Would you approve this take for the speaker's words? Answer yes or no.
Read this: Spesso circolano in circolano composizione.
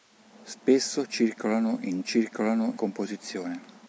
yes